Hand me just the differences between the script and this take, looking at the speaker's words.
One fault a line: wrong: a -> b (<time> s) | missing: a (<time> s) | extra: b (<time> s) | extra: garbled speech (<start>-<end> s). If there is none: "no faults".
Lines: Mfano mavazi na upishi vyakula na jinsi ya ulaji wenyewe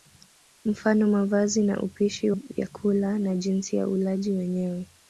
no faults